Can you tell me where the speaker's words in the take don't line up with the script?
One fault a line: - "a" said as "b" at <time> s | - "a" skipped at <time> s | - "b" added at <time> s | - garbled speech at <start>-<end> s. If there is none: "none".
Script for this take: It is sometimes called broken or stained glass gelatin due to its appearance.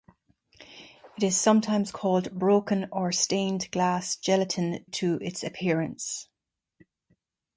- "due" skipped at 4.8 s